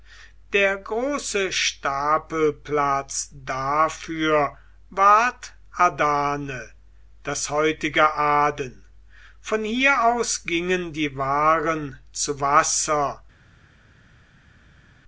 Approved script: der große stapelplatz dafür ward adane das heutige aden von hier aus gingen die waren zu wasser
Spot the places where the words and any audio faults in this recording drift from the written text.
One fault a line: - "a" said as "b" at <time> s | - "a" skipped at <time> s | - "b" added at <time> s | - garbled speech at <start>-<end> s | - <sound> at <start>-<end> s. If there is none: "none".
none